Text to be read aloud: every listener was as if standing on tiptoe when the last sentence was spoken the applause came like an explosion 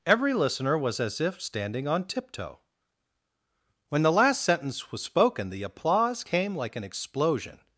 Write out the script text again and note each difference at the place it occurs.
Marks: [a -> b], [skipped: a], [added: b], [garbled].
every listener was as if standing on tiptoe when the last sentence was spoken the applause came like an explosion